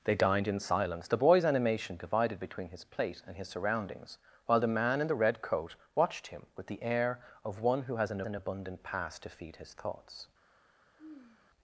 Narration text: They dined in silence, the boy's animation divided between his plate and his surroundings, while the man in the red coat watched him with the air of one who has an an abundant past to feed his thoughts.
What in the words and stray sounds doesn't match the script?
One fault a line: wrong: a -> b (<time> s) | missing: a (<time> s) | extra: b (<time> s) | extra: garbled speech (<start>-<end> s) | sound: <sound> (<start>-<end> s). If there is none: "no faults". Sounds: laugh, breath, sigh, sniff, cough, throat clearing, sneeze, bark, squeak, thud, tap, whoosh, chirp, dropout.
sound: sigh (11.0-11.5 s)